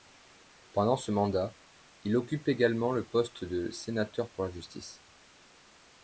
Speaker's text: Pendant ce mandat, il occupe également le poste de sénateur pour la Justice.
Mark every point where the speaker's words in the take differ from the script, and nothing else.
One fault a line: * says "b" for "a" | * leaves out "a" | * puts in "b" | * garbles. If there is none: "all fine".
all fine